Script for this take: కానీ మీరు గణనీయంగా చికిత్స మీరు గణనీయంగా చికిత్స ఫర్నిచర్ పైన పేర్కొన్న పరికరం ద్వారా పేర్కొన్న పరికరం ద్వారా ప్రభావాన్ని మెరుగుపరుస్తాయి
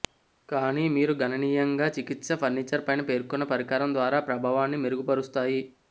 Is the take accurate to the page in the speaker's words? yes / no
no